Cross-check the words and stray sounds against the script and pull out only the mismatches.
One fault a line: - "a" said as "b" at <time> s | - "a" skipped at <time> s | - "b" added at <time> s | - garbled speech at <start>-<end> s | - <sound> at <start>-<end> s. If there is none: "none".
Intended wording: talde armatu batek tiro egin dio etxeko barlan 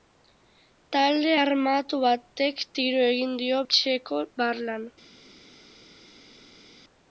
none